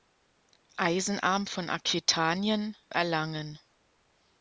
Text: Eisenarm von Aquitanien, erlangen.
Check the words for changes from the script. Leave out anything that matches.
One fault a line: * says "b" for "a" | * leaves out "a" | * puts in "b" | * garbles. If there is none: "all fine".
all fine